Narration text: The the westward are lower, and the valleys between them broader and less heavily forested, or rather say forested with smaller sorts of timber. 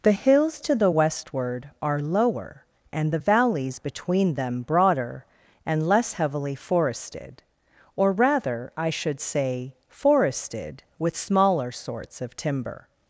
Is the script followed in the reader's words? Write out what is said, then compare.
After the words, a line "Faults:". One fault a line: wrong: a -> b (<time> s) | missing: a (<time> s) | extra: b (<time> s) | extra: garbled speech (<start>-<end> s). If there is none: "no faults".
The hills to the westward are lower, and the valleys between them broader and less heavily forested, or rather I should say forested with smaller sorts of timber.
Faults:
extra: hills to (0.1 s)
extra: I should (8.8 s)